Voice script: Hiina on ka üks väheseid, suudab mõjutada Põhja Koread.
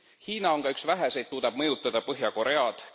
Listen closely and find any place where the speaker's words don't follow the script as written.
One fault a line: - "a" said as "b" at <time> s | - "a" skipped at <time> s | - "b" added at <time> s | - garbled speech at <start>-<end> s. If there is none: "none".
none